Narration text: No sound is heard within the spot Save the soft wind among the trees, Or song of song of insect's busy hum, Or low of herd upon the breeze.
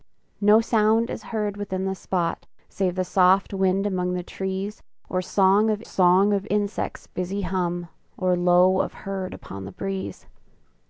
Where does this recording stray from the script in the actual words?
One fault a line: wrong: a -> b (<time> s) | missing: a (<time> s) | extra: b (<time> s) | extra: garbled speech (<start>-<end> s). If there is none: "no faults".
no faults